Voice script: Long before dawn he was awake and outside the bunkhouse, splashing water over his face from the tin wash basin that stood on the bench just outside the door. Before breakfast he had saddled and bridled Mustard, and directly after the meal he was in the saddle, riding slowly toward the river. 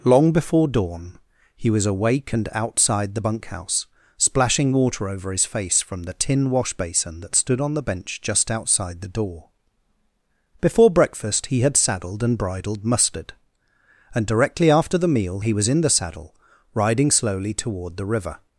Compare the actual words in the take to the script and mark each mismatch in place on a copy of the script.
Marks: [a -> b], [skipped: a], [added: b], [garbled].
Long before dawn he was awake and outside the bunkhouse, splashing water over his face from the tin wash basin that stood on the bench just outside the door. Before breakfast he had saddled and bridled Mustard, and directly after the meal he was in the saddle, riding slowly toward the river.